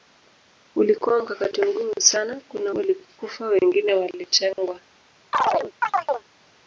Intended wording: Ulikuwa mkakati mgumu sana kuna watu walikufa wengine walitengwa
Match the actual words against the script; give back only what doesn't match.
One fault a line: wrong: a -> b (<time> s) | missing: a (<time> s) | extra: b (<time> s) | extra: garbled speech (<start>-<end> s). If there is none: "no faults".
missing: watu (2.7 s)